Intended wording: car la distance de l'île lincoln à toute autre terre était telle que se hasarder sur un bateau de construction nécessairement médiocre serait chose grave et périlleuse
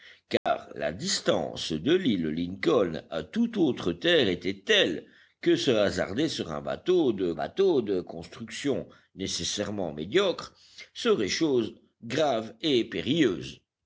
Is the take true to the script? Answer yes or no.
no